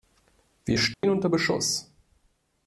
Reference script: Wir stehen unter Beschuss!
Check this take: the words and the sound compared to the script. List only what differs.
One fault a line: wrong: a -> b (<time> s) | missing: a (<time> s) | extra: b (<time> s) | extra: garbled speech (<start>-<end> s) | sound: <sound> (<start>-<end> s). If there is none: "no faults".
sound: dropout (0.9-1.0 s)